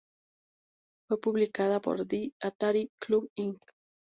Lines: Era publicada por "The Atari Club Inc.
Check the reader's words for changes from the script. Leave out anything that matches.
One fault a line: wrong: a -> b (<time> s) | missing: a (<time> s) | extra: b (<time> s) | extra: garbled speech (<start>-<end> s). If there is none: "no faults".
wrong: Era -> Fue (1.1 s)